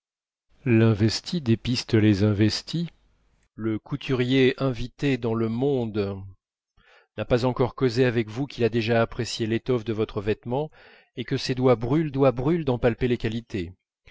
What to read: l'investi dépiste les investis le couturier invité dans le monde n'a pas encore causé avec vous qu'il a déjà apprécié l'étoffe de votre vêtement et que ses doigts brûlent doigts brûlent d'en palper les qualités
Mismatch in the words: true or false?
false